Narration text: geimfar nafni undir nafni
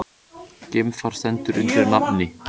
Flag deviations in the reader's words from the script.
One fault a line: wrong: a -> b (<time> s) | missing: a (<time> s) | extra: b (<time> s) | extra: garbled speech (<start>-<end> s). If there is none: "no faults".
wrong: nafni -> stendur (1.2 s)